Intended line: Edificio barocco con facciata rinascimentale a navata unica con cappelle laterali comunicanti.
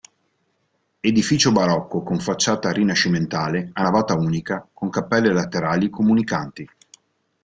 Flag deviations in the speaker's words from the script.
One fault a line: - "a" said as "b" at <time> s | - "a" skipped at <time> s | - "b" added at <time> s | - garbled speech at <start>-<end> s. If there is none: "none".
none